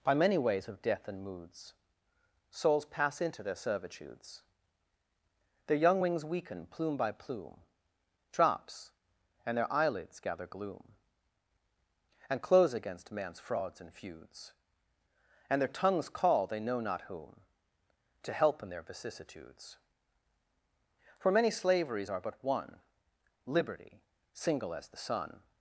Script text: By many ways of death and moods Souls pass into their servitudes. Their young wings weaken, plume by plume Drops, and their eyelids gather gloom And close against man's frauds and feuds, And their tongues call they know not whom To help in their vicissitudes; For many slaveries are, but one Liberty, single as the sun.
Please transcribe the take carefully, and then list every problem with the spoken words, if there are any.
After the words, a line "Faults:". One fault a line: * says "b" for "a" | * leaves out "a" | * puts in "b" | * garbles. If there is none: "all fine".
By many ways of death and moods Souls pass into their servitudes. Their young wings weaken, plume by plume Drops, and their eyelids gather gloom And close against man's frauds and feuds, And their tongues call they know not whom To help in their vicissitudes; For many slaveries are, but one Liberty, single as the sun.
Faults:
all fine